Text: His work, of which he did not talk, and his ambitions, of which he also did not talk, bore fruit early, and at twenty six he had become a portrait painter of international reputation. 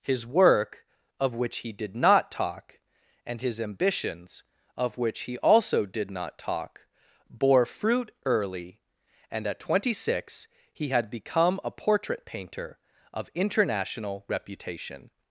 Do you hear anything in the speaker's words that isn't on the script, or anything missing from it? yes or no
no